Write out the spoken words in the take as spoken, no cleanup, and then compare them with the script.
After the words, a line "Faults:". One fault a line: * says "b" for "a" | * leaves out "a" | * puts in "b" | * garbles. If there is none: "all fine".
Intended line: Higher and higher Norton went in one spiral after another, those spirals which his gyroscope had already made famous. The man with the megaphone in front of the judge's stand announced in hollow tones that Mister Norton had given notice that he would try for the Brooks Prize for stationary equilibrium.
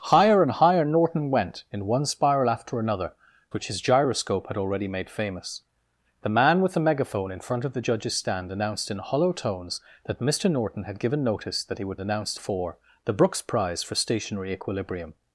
Higher and higher Norton went in one spiral after another, which his gyroscope had already made famous. The man with the megaphone in front of the judge's stand announced in hollow tones that Mister Norton had given notice that he would announced for the Brooks Prize for stationary equilibrium.
Faults:
* leaves out "those spirals"
* says "announced" for "try"